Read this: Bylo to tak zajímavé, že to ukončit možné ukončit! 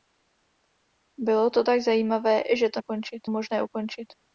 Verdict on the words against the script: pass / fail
pass